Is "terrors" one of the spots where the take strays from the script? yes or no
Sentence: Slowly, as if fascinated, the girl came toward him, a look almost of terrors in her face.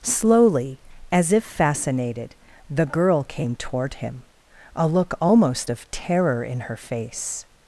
yes